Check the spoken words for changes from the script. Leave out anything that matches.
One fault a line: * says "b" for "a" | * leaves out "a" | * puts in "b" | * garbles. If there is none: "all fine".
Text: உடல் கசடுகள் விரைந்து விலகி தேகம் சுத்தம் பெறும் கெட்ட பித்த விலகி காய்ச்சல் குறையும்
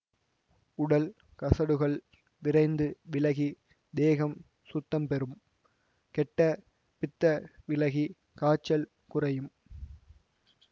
all fine